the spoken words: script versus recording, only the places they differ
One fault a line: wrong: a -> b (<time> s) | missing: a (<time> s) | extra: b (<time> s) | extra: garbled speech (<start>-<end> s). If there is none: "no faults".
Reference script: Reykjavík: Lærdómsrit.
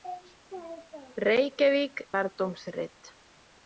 no faults